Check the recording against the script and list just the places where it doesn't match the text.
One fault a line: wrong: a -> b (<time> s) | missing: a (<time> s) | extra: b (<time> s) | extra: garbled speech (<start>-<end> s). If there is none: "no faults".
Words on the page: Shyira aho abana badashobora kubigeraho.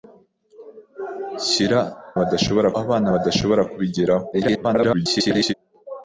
wrong: aho -> badashobora (2.2 s)
extra: garbled speech (4.3-5.5 s)